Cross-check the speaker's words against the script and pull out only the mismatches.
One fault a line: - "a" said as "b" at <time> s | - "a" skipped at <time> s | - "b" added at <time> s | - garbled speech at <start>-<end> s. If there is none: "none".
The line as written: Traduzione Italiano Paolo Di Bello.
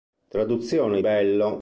- "Italiano Paolo Di" skipped at 1.0 s